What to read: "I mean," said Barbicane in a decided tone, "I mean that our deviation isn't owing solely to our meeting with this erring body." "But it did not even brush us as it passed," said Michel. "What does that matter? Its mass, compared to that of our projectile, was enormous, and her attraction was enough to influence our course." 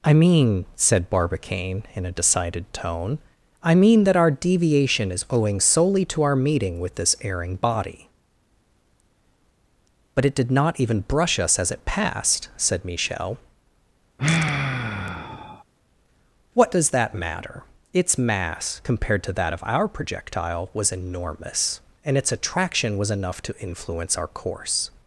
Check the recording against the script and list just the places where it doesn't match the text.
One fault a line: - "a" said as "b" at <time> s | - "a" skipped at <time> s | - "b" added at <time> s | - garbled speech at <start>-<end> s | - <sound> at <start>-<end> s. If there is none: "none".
- "isn't" said as "is" at 5.1 s
- sigh at 14.2-15.6 s
- "her" said as "its" at 22.2 s